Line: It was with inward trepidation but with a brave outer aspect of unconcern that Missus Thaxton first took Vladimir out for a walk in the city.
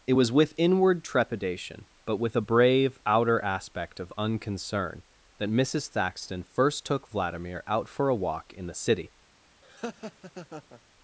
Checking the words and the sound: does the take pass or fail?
fail